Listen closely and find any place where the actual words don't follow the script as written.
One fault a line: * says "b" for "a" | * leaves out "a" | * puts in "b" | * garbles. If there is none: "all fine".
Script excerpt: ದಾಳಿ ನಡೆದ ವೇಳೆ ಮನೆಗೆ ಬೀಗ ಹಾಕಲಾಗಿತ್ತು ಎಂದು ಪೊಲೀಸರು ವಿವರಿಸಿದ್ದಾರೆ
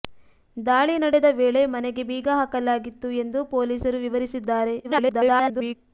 * garbles